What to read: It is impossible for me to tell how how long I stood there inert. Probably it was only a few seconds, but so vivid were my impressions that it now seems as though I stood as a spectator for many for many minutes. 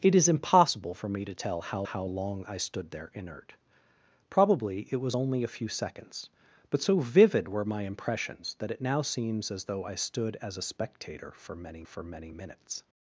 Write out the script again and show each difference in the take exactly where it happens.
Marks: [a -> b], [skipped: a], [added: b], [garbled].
It is impossible for me to tell how how long I stood there inert. Probably it was only a few seconds, but so vivid were my impressions that it now seems as though I stood as a spectator for many for many minutes.